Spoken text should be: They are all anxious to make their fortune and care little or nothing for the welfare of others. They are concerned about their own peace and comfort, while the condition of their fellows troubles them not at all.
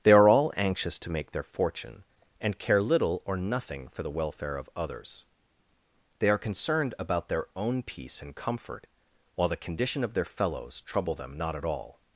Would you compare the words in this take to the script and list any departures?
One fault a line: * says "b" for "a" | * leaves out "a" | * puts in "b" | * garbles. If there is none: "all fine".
* says "trouble" for "troubles"